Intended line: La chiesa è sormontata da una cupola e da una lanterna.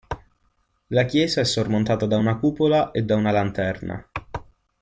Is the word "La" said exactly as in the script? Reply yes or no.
yes